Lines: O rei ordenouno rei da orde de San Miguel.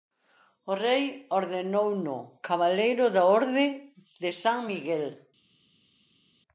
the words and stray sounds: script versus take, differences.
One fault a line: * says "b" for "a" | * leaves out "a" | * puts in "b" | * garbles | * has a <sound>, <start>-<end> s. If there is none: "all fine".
* says "cabaleiro" for "rei"